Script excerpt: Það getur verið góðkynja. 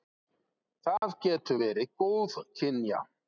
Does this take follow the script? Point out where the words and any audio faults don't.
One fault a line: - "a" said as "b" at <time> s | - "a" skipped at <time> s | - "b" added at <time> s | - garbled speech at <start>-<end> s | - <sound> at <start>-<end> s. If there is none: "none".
- dropout at 1.0-1.0 s